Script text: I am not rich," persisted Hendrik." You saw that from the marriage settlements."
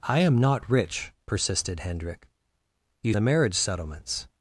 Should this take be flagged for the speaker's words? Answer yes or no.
yes